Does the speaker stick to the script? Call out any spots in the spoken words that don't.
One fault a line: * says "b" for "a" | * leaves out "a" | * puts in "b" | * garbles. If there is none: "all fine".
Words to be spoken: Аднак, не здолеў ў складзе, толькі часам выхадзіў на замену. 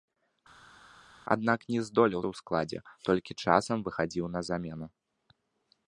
all fine